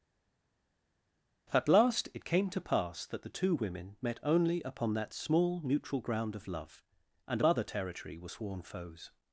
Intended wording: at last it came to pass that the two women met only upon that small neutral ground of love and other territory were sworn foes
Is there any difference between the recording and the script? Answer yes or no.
no